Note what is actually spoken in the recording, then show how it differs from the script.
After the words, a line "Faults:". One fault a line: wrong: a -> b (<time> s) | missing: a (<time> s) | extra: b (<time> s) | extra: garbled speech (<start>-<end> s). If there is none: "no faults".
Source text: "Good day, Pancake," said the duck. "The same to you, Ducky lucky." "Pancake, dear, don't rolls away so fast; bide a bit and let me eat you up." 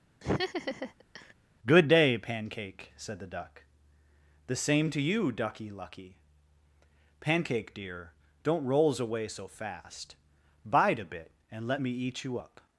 "Good day, Pancake," said the duck. "The same to you, Ducky lucky." "Pancake, dear, don't rolls away so fast; bide a bit and let me eat you up."
Faults:
no faults